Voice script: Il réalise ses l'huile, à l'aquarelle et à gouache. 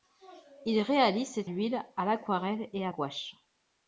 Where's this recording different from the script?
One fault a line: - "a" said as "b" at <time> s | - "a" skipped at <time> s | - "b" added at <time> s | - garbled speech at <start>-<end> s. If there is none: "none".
none